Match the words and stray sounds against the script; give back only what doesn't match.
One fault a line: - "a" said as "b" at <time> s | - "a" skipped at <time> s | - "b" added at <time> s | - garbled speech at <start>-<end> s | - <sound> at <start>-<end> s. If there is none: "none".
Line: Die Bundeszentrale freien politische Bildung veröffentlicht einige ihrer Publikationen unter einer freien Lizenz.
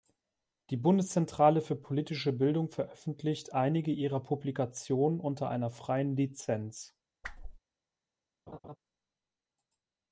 - "freien" said as "für" at 1.6 s
- whoosh at 7.2-7.6 s
- laugh at 8.5-8.8 s